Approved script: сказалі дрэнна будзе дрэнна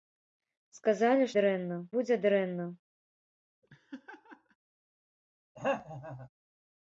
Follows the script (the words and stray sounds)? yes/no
no